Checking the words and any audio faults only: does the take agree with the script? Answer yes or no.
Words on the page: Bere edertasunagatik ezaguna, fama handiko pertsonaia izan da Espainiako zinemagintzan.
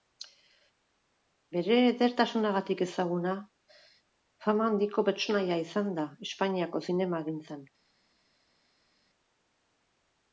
yes